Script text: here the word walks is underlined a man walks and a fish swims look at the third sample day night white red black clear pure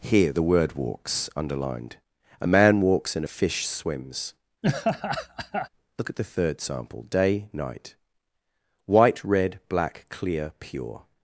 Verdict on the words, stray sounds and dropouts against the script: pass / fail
fail